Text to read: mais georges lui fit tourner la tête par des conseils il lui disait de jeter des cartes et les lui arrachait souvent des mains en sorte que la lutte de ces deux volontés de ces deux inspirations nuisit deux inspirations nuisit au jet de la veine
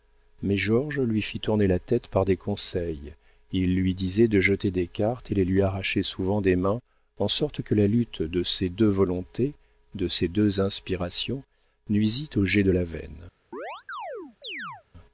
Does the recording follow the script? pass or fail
fail